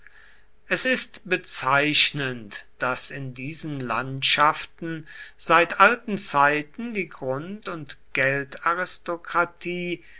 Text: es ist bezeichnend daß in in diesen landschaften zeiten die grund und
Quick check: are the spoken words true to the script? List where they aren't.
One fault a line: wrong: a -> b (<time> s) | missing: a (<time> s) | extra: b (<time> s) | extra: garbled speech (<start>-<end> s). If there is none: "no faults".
missing: in (3.3 s)
extra: seit alten (5.4 s)